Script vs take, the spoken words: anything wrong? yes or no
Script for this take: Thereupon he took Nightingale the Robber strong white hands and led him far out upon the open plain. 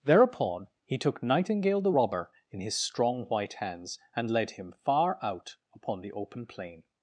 yes